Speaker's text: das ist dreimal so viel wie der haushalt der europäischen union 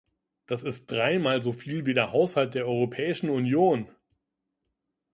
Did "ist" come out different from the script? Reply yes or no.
no